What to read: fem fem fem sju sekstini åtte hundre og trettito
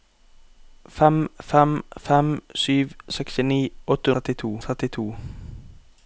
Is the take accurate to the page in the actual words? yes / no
no